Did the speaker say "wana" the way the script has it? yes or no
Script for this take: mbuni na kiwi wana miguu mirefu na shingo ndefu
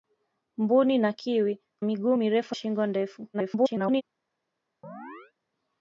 no